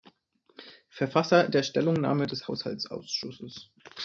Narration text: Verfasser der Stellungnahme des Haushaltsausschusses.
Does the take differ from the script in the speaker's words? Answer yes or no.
no